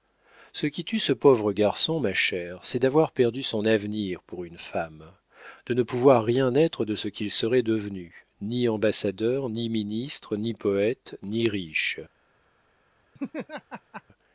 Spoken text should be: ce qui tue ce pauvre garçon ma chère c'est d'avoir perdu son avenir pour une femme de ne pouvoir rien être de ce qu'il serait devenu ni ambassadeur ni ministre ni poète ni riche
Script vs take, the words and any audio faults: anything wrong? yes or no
yes